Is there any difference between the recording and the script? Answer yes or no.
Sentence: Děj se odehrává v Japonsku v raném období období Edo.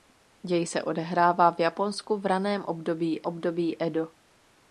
no